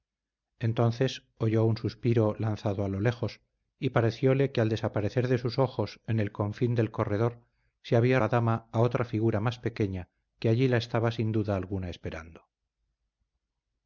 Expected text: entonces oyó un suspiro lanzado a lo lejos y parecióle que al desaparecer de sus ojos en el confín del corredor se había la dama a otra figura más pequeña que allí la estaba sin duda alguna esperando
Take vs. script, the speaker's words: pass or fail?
pass